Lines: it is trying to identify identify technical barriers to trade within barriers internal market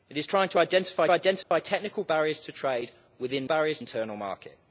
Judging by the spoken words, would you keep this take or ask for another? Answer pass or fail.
pass